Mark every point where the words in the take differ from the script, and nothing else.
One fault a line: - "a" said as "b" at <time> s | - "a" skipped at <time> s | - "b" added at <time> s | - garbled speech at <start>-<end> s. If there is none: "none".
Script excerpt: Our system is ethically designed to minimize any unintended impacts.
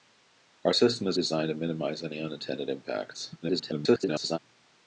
- "ethically" skipped at 1.2 s
- garbled speech at 3.4-4.4 s